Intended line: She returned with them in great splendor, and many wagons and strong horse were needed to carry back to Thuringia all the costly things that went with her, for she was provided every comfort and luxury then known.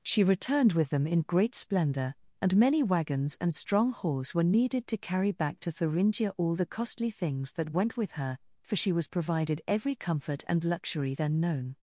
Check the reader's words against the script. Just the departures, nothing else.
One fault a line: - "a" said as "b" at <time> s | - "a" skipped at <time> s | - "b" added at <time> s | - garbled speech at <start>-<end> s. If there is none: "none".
none